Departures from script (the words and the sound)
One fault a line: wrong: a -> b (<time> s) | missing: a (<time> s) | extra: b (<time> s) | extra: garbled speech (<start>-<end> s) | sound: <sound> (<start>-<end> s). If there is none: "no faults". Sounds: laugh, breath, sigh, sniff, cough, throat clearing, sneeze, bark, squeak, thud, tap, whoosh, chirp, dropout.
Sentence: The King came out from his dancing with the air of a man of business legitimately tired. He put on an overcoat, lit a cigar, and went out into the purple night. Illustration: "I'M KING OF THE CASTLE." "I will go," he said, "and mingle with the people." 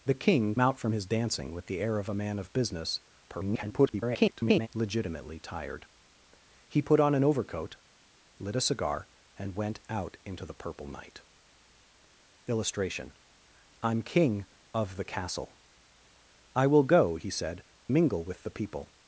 missing: came (0.6 s)
extra: garbled speech (3.3-4.7 s)
missing: and (17.6 s)